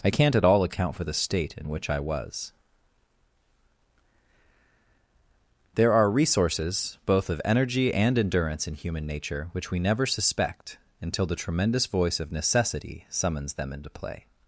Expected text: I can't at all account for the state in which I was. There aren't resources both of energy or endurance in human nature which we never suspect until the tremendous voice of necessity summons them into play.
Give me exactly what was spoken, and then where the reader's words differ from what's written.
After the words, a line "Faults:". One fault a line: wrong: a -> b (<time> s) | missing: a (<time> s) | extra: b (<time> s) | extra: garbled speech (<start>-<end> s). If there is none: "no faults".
I can't at all account for the state in which I was. There are resources both of energy and endurance in human nature which we never suspect until the tremendous voice of necessity summons them into play.
Faults:
wrong: aren't -> are (5.9 s)
wrong: or -> and (7.9 s)